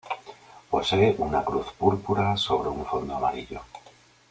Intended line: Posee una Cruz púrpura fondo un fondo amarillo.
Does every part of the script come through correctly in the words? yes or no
no